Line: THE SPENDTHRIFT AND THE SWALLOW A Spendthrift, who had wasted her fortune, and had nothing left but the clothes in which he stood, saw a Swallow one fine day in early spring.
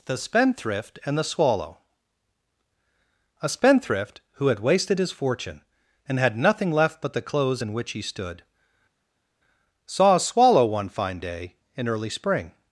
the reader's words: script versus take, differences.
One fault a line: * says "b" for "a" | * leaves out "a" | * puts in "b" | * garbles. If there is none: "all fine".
* says "his" for "her"